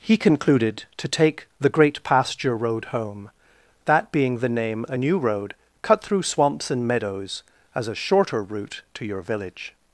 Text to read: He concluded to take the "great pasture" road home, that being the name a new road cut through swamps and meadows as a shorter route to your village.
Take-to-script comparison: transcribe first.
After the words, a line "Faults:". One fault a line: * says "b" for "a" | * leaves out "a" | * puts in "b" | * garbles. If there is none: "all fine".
He concluded to take the "great pasture" road home, that being the name a new road cut through swamps and meadows as a shorter route to your village.
Faults:
all fine